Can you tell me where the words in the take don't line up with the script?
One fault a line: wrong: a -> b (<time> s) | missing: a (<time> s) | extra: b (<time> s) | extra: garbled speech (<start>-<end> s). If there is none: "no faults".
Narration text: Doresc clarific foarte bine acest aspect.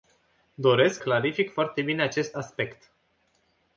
no faults